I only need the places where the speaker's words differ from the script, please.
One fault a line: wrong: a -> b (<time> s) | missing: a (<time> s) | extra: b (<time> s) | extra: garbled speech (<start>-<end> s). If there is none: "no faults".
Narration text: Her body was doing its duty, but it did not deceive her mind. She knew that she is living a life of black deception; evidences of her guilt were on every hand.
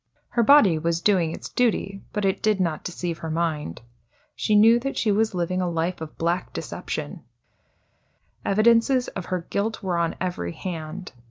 wrong: is -> was (5.1 s)